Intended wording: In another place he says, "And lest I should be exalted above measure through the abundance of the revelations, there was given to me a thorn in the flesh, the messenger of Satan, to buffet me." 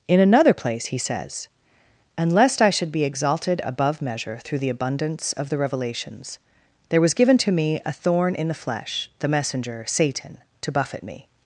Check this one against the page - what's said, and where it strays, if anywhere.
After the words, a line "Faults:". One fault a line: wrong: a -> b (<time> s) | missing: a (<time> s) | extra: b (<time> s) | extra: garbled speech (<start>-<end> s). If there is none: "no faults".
In another place he says, "And lest I should be exalted above measure through the abundance of the revelations, there was given to me a thorn in the flesh, the messenger Satan, to buffet me."
Faults:
missing: of (9.8 s)